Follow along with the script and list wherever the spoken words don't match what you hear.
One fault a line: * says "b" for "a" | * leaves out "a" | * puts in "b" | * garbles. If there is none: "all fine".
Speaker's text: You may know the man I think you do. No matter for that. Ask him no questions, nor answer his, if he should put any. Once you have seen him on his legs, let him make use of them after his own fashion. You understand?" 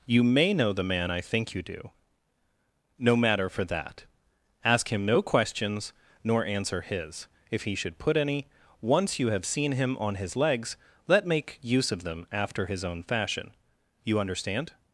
* leaves out "him"